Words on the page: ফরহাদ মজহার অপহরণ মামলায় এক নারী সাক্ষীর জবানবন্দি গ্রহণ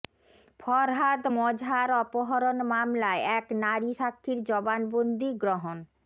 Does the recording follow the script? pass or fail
pass